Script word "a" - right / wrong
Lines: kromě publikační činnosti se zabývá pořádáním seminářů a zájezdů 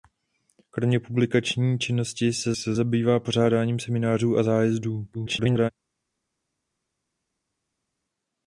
right